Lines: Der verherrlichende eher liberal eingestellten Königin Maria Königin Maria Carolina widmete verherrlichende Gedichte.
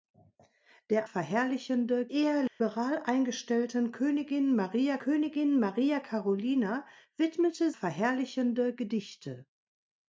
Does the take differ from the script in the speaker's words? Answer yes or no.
no